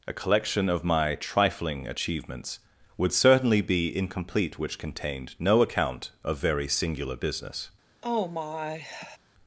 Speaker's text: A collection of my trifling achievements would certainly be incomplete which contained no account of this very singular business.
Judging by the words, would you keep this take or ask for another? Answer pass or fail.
fail